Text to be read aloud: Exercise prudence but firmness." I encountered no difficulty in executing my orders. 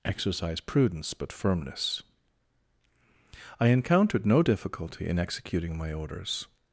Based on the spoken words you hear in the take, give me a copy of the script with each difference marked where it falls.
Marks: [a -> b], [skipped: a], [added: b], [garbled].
Exercise prudence but firmness." I encountered no difficulty in executing my orders.